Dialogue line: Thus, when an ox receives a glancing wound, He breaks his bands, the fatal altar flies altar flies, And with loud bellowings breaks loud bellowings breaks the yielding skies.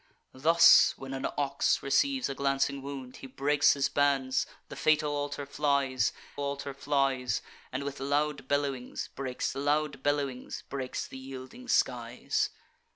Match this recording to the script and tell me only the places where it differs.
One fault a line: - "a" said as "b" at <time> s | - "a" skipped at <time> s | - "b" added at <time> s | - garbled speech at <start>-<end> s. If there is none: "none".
none